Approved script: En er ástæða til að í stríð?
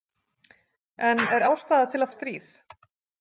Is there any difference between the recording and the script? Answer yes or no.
no